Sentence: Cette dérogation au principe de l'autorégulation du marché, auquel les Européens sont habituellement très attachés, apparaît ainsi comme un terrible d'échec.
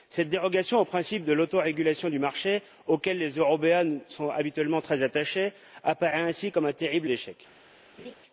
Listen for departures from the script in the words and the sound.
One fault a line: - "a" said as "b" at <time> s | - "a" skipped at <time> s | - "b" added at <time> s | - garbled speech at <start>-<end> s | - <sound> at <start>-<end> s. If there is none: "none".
- laugh at 8.0-8.1 s